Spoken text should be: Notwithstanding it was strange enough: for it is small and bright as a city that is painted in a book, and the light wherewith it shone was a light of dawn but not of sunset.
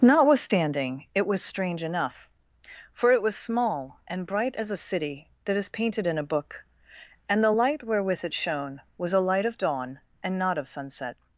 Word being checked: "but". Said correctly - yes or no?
no